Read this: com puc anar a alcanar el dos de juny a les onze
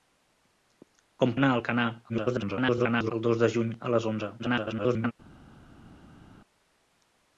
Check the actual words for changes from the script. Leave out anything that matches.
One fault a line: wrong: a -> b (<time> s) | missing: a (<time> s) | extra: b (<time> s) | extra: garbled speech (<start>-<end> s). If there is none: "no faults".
missing: puc (1.3 s)
extra: garbled speech (2.1-3.1 s)
extra: garbled speech (4.4-5.1 s)